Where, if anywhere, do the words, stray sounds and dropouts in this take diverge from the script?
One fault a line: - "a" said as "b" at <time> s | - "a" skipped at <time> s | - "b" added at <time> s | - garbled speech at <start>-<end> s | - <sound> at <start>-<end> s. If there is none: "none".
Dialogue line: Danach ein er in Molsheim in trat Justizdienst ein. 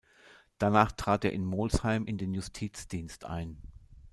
- "ein" said as "trat" at 0.9 s
- "trat" said as "den" at 2.2 s